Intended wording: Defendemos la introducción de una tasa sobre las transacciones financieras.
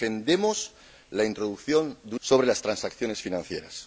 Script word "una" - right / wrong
wrong